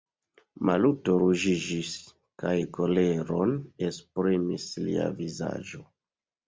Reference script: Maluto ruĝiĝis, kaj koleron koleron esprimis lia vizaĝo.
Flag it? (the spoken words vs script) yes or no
yes